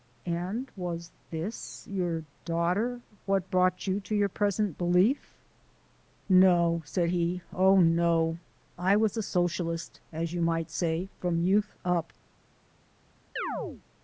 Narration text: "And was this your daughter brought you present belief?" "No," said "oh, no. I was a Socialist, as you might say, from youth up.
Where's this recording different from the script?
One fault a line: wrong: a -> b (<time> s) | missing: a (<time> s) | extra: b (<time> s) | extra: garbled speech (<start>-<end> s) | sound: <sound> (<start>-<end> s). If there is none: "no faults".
extra: what (3.3 s)
extra: to your (4.0 s)
extra: he (7.1 s)
sound: chirp (13.4-13.8 s)